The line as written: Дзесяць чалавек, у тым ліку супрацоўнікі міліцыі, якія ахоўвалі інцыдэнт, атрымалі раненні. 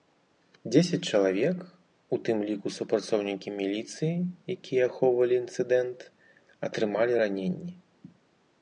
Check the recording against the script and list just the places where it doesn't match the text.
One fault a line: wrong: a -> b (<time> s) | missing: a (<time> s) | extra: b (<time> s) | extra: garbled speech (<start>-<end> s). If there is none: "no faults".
no faults